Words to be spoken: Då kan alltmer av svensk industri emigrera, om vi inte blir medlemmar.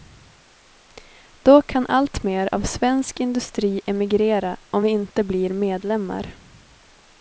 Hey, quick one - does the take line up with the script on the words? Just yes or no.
yes